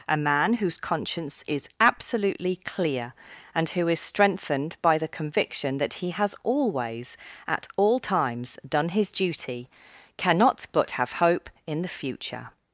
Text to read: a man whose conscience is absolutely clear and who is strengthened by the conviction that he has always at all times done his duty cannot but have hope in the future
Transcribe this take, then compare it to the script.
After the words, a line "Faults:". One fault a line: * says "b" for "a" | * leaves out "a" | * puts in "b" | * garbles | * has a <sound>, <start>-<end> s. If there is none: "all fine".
a man whose conscience is absolutely clear and who is strengthened by the conviction that he has always at all times done his duty cannot but have hope in the future
Faults:
all fine